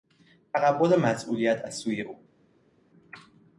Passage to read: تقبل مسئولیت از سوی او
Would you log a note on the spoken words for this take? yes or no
no